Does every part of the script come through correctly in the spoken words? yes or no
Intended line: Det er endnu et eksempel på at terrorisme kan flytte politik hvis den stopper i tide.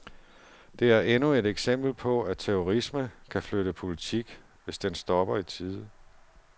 yes